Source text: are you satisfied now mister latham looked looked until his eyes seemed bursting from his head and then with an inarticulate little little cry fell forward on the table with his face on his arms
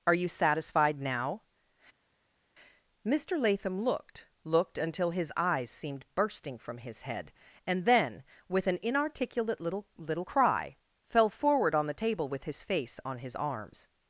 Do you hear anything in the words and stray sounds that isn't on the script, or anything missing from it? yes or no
no